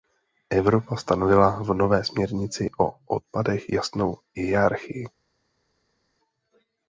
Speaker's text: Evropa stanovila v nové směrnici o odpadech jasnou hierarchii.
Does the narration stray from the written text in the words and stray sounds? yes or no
no